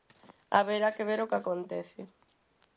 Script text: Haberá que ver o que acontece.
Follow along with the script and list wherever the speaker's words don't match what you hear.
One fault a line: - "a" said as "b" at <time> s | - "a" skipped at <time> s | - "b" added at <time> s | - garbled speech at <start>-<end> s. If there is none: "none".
none